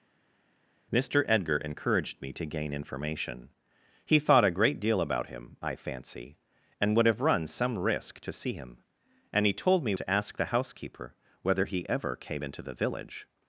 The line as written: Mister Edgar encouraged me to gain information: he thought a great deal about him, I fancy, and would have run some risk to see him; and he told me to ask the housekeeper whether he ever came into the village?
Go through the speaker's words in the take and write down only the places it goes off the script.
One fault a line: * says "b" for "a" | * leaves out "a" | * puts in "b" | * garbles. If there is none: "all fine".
all fine